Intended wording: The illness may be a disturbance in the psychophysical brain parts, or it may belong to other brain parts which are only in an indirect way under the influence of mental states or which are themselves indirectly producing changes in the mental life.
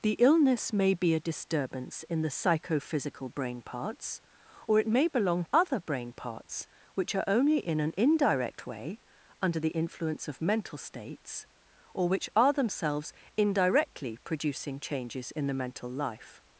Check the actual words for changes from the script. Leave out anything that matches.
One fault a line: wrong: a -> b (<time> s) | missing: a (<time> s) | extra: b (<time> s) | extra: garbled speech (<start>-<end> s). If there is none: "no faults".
missing: to (5.5 s)